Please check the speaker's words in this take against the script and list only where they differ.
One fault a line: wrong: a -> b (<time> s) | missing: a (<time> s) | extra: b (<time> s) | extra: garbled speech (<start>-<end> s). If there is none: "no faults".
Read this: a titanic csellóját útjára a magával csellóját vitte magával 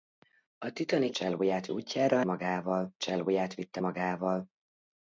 no faults